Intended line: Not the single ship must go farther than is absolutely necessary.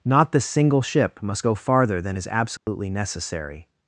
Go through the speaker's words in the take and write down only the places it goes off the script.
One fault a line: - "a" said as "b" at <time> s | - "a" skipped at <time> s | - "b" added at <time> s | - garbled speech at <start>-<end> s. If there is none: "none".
none